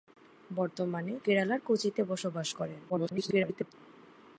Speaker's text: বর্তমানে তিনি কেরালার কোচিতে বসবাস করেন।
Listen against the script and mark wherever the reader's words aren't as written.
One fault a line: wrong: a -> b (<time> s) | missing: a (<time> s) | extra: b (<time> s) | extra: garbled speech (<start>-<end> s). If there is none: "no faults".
missing: তিনি (1.1 s)
extra: garbled speech (2.9-3.7 s)